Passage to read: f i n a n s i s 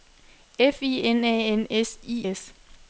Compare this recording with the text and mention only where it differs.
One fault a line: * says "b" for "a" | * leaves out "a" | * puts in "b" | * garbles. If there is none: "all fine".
all fine